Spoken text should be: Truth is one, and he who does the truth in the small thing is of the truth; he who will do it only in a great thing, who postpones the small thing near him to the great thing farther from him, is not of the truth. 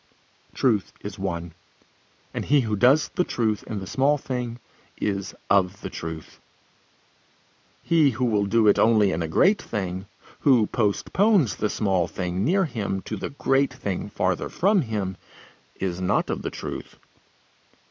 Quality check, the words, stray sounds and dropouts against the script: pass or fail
pass